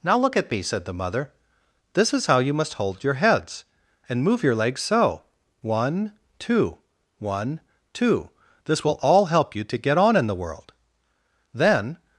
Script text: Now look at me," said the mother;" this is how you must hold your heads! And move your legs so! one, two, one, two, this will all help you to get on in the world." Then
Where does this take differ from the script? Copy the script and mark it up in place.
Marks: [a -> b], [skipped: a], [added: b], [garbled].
Now look at me," said the mother;" this is how you must hold your heads! And move your legs so! one, two, one, two, this will all help you to get on in the world." Then